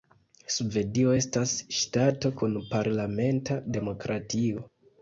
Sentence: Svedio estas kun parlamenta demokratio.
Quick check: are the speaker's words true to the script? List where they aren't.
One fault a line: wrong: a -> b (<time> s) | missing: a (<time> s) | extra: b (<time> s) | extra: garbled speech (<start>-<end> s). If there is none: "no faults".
extra: ŝtato (1.8 s)